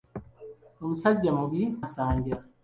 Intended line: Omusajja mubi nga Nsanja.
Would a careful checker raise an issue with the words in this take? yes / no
yes